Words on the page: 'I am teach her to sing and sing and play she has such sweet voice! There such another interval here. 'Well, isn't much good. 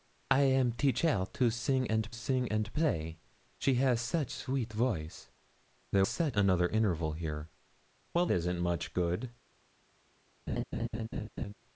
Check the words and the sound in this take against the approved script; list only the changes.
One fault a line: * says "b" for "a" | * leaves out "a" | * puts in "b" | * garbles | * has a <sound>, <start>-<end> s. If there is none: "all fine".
* has a laugh, 10.5-11.5 s